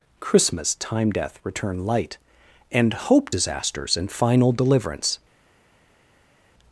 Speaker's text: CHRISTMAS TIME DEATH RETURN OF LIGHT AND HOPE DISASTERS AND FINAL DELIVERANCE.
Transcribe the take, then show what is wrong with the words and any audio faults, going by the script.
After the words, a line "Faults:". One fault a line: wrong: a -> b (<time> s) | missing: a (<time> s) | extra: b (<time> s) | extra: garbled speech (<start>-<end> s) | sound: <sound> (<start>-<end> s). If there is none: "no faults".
CHRISTMAS TIME DEATH RETURN LIGHT AND HOPE DISASTERS AND FINAL DELIVERANCE.
Faults:
missing: OF (1.9 s)